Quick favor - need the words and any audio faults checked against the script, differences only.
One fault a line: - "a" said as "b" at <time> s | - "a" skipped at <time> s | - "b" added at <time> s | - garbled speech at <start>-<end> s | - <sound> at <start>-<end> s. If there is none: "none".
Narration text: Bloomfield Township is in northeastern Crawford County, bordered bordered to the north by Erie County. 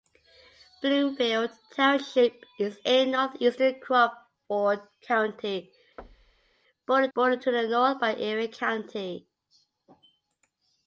- thud at 6.0-6.6 s